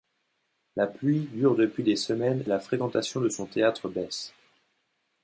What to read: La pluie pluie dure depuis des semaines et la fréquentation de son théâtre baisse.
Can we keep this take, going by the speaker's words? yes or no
no